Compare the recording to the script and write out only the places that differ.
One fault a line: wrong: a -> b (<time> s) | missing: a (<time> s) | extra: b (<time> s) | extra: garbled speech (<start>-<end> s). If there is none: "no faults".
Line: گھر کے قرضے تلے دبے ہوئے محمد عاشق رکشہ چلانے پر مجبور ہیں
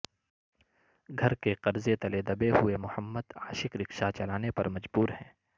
no faults